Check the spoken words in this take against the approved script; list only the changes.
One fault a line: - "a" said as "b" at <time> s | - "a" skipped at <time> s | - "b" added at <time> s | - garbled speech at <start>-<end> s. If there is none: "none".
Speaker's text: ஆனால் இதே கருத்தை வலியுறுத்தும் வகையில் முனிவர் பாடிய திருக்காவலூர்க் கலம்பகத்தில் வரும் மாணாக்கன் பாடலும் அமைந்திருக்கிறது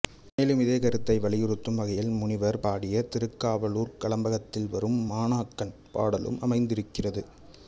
- "ஆனால்" said as "மேலும்" at 0.4 s